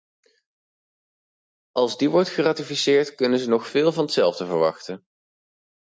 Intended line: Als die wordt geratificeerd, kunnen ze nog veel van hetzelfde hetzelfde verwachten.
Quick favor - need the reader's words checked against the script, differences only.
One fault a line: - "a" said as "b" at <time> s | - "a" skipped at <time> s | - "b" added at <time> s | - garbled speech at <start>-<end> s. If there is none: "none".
- "hetzelfde" skipped at 4.4 s